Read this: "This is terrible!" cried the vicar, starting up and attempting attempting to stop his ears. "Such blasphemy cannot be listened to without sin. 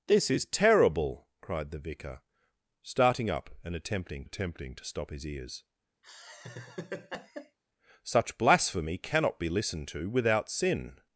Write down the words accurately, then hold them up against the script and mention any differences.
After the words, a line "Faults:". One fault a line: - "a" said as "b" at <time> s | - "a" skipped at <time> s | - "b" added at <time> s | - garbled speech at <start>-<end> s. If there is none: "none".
"This is terrible!" cried the vicar, starting up and attempting attempting to stop his ears. "Such blasphemy cannot be listened to without sin.
Faults:
none